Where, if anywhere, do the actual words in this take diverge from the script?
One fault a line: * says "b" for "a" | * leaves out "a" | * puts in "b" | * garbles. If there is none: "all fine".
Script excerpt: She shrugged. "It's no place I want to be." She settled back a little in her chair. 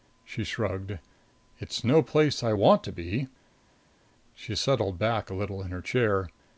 all fine